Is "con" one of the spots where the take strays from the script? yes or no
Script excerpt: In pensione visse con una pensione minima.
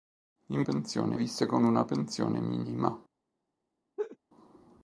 no